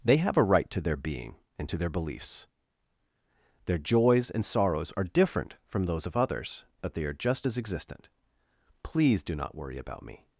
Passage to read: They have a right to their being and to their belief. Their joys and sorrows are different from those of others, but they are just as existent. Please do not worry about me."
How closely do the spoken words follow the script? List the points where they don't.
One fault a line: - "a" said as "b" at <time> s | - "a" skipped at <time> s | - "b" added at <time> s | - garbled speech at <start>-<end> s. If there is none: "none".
- "belief" said as "beliefs" at 1.9 s